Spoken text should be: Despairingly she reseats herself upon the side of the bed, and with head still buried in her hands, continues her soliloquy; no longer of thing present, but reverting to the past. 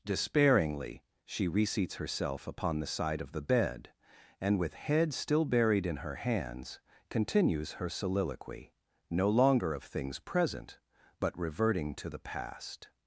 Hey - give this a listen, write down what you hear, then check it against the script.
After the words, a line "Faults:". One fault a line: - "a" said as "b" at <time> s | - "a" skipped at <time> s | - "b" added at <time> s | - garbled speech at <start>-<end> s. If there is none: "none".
Despairingly she reseats herself upon the side of the bed, and with head still buried in her hands, continues her soliloquy; no longer of things present, but reverting to the past.
Faults:
- "thing" said as "things" at 9.8 s